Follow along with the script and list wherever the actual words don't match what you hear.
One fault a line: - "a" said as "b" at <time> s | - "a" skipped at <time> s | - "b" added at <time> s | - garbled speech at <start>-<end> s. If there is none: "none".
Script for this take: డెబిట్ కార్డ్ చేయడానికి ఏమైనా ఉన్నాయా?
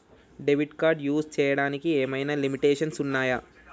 - "యూస్" added at 1.0 s
- "లిమిటేషన్స్" added at 2.4 s